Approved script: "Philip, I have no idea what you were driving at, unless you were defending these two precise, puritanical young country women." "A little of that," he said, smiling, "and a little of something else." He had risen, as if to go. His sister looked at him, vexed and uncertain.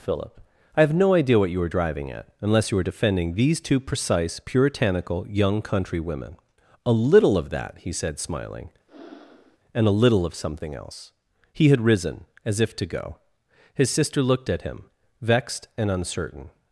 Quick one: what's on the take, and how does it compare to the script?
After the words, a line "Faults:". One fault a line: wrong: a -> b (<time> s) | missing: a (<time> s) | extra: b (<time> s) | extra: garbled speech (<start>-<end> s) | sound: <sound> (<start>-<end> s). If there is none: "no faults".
"Philip, I have no idea what you were driving at, unless you were defending these two precise, puritanical young country women." "A little of that," he said, smiling, "and a little of something else." He had risen, as if to go. His sister looked at him, vexed and uncertain.
Faults:
sound: breath (8.9-9.6 s)